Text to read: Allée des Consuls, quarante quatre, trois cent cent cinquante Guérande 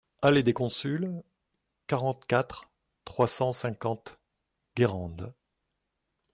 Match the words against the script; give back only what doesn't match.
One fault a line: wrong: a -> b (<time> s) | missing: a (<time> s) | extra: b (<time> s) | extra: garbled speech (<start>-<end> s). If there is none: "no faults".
missing: cent (3.5 s)